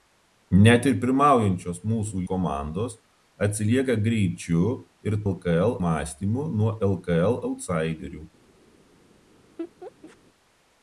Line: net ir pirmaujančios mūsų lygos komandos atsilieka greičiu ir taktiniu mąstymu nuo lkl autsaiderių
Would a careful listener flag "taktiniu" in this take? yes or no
yes